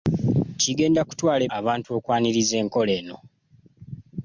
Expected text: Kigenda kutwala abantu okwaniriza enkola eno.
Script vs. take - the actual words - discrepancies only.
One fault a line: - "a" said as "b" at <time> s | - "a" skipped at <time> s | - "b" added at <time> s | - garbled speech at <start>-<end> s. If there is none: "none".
none